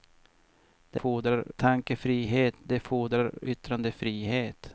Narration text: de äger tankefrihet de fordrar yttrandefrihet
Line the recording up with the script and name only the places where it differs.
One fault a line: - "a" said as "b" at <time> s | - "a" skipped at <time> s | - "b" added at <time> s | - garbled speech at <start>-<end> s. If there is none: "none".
- "äger" said as "fordrar" at 0.9 s